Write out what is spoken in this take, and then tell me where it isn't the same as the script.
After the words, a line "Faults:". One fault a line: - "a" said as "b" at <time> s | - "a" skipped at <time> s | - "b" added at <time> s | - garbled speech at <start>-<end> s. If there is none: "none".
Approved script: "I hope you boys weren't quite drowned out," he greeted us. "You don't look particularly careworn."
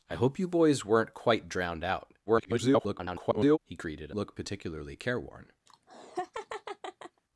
"I hope you boys weren't quite drowned out," [garbled] he greeted look particularly careworn."
Faults:
- garbled speech at 2.3-3.6 s
- "us You don't" skipped at 4.1 s